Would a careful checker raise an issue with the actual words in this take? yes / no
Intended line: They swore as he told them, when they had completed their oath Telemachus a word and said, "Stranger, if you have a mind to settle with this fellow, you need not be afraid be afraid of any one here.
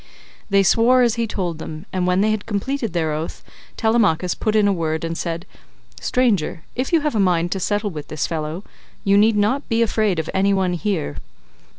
yes